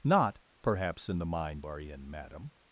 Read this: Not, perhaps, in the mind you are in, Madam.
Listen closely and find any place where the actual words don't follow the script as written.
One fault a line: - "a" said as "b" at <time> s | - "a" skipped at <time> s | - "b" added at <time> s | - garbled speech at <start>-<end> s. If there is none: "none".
- "you" skipped at 1.7 s